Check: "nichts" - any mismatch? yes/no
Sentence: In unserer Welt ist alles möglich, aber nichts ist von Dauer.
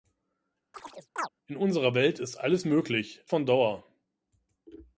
yes